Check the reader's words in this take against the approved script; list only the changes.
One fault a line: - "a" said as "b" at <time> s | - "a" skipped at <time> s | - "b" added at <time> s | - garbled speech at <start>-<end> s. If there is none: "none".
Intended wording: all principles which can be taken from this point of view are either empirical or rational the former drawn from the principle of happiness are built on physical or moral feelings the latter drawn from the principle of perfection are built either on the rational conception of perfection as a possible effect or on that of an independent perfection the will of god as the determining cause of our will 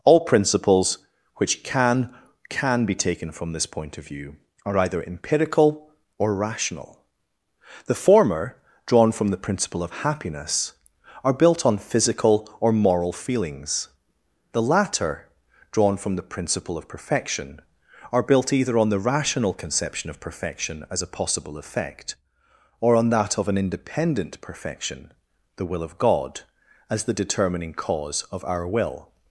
- "can" added at 2.5 s